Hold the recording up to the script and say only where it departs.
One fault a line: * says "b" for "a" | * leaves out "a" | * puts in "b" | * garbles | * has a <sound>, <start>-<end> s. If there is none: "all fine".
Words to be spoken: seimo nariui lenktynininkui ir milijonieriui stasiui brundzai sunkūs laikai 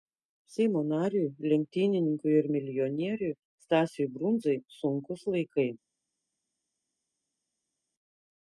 all fine